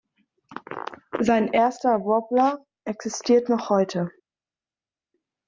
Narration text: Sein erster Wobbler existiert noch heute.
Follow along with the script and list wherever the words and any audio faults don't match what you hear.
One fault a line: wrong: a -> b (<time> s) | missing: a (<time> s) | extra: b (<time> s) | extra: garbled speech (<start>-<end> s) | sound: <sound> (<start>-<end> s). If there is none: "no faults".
no faults